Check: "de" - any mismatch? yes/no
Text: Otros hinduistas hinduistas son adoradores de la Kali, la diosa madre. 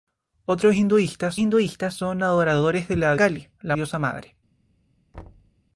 no